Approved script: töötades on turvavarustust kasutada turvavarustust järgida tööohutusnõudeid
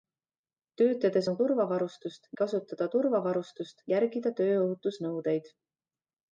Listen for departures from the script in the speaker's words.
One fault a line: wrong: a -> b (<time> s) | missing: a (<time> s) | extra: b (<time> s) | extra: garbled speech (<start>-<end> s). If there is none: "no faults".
no faults